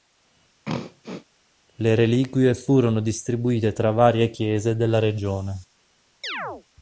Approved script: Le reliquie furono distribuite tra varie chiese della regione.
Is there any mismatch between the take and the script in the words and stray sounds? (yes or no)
yes